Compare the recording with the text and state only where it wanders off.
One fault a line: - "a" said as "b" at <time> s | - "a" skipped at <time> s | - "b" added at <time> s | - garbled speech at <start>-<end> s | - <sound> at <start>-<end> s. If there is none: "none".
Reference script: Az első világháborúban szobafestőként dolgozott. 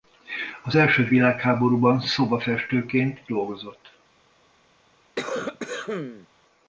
- cough at 5.2-6.3 s